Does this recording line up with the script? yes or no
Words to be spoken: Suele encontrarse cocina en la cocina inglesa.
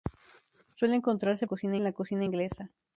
yes